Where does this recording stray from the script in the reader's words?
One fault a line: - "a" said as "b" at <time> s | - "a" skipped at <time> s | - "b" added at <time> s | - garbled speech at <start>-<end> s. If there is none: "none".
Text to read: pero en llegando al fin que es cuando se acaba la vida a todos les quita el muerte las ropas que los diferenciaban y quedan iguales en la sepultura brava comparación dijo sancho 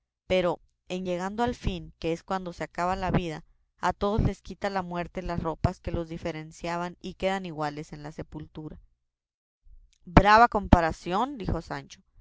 - "el" said as "la" at 4.7 s